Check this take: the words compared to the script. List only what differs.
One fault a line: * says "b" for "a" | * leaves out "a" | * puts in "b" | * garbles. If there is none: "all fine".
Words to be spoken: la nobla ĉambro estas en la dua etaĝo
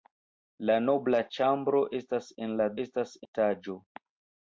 * says "estas" for "dua"